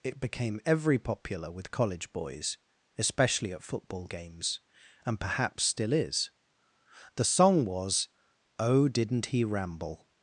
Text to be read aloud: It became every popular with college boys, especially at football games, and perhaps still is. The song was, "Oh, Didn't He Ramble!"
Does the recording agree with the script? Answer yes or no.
yes